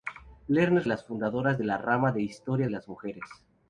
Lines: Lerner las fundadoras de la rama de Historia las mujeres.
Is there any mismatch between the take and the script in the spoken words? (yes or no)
no